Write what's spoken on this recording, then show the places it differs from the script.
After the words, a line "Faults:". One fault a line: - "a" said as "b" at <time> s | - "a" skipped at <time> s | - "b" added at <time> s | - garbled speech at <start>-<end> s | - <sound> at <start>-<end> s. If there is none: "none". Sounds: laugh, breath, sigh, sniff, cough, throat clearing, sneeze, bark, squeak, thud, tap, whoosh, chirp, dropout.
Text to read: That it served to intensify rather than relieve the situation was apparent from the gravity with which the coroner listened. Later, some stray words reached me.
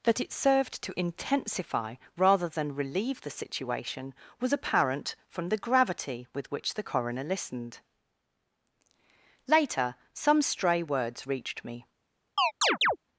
That it served to intensify rather than relieve the situation was apparent from the gravity with which the coroner listened. Later, some stray words reached me.
Faults:
- chirp at 12.4-13.0 s